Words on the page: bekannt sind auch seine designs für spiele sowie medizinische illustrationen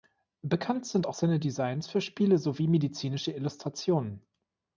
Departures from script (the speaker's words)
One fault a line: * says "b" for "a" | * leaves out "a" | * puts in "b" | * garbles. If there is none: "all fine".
all fine